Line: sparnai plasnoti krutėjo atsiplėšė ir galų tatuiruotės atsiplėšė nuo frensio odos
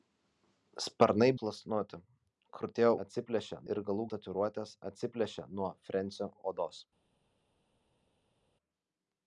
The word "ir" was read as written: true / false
true